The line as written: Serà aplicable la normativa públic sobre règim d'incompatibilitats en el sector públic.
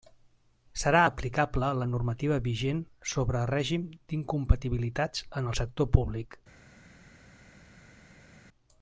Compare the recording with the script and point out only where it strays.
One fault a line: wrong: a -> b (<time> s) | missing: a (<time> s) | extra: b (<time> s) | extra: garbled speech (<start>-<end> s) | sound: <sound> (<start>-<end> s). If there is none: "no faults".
wrong: públic -> vigent (2.5 s)